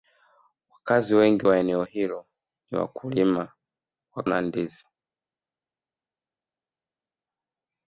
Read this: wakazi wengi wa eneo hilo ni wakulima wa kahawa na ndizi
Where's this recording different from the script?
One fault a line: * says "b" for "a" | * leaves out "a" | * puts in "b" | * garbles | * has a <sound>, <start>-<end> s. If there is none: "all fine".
* leaves out "kahawa"